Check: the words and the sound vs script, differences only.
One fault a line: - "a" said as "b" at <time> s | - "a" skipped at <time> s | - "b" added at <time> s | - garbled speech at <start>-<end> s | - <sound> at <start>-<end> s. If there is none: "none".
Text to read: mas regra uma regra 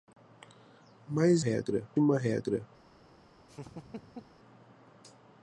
- laugh at 3.5-4.4 s